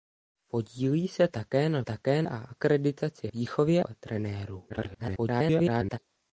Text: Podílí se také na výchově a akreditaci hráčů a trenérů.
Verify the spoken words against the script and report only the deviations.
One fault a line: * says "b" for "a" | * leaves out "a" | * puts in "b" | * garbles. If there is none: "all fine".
* says "také" for "výchově"
* says "výchově" for "hráčů"
* garbles